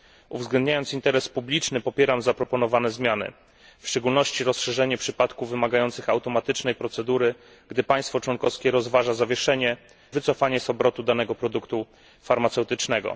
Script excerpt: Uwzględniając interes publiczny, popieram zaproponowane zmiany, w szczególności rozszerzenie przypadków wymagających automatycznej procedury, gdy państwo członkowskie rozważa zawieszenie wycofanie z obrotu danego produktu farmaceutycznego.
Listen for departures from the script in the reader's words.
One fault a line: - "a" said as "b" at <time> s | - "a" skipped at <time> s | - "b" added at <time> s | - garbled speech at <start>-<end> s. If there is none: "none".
none